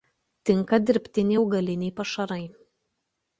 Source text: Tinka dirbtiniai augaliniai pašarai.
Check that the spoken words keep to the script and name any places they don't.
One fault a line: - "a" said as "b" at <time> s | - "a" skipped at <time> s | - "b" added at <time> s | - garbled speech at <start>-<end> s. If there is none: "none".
none